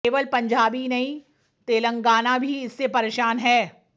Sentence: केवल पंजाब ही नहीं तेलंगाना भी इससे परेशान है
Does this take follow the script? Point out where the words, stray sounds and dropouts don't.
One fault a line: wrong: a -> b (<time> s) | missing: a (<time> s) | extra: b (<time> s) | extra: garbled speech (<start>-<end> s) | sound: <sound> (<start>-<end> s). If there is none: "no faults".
no faults